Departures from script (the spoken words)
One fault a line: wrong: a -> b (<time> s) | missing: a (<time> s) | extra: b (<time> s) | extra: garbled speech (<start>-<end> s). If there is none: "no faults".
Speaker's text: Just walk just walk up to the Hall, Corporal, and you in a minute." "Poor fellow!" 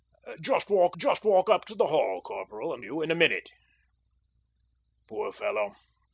no faults